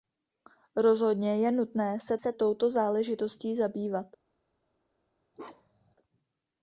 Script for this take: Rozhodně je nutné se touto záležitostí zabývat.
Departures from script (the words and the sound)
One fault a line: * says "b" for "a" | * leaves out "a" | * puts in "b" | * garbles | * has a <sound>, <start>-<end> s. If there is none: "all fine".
* puts in "se"
* has a bark, 5.3-5.9 s